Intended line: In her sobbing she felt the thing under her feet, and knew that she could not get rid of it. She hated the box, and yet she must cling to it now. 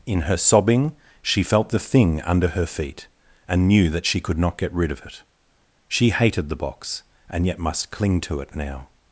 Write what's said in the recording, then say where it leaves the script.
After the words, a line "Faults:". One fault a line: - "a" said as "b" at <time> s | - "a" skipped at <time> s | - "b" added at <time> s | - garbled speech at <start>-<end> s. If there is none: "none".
In her sobbing she felt the thing under her feet, and knew that she could not get rid of it. She hated the box, and yet must cling to it now.
Faults:
- "she" skipped at 7.6 s